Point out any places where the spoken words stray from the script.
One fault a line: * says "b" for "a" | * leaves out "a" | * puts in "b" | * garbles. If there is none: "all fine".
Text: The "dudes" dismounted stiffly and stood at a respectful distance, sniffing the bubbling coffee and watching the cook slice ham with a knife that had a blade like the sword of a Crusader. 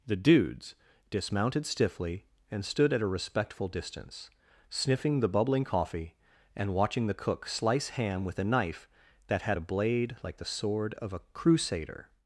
all fine